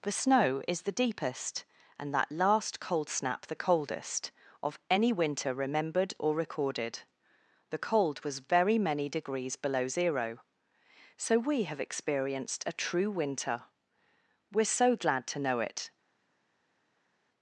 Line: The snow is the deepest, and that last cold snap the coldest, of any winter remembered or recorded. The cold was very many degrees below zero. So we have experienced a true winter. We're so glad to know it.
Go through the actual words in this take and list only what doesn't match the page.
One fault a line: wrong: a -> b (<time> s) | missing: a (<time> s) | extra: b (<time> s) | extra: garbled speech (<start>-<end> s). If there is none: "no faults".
no faults